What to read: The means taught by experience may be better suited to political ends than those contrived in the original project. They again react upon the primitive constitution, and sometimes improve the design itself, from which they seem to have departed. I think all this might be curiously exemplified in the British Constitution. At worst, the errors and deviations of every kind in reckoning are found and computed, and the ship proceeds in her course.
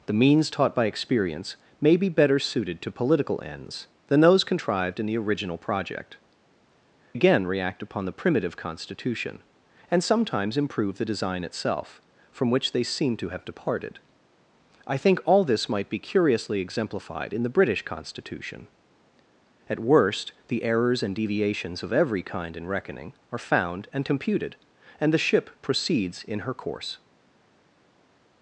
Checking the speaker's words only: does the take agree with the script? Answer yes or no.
no